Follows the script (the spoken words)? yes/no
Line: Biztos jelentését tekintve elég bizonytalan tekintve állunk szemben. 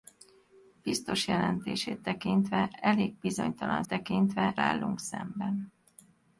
yes